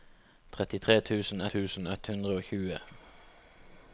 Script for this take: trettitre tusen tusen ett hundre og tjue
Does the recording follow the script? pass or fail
pass